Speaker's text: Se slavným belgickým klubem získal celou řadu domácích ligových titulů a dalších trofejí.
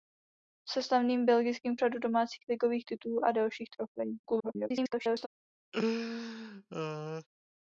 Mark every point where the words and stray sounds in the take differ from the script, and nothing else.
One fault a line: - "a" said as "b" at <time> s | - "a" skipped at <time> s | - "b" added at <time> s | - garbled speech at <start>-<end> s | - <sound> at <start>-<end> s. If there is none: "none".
- "klubem získal celou" skipped at 1.8 s
- garbled speech at 4.2-5.3 s
- laugh at 5.7-7.3 s